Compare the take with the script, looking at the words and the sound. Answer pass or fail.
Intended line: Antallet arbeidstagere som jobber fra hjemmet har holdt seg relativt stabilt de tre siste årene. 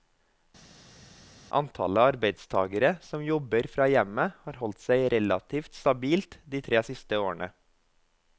pass